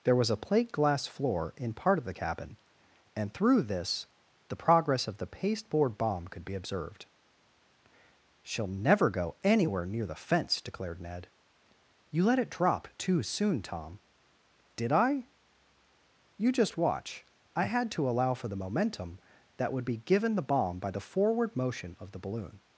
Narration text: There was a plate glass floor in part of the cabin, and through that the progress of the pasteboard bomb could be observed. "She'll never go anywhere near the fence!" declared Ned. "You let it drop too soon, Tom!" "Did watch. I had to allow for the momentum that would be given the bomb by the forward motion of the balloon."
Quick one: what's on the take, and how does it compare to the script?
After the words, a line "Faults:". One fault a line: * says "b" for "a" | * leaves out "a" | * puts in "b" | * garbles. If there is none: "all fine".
There was a plate glass floor in part of the cabin, and through this the progress of the pasteboard bomb could be observed. "She'll never go anywhere near the fence!" declared Ned. "You let it drop too soon, Tom!" "Did I? You just watch. I had to allow for the momentum that would be given the bomb by the forward motion of the balloon."
Faults:
* says "this" for "that"
* puts in "I You just"